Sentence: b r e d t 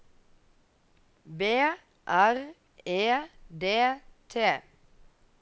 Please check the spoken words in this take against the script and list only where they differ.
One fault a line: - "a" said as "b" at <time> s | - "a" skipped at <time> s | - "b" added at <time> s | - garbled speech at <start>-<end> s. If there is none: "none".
none